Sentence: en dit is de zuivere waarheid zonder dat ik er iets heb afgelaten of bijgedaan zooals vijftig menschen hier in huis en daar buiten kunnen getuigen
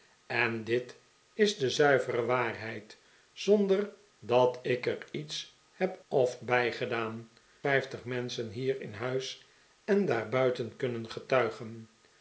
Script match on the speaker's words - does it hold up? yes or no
no